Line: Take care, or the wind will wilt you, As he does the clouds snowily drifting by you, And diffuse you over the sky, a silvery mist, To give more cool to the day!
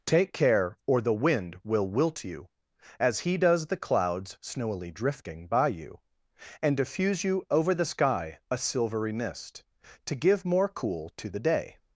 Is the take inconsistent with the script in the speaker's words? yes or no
no